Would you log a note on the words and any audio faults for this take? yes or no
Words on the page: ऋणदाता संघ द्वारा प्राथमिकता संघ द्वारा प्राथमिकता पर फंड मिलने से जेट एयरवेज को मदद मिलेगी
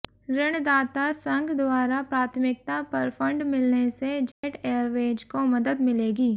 yes